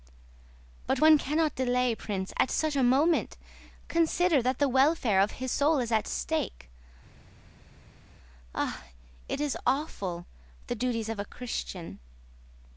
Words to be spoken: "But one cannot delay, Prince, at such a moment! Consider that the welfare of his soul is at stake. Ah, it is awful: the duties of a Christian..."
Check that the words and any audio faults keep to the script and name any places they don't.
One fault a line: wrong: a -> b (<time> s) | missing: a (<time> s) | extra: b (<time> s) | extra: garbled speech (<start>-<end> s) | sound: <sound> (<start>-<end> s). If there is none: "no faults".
no faults